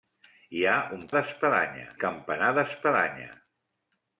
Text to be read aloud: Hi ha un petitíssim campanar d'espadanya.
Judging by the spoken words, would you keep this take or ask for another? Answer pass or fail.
fail